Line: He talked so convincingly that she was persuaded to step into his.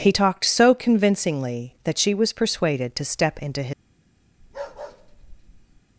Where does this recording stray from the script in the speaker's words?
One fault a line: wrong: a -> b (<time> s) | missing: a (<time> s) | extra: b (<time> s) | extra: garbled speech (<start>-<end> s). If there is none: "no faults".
no faults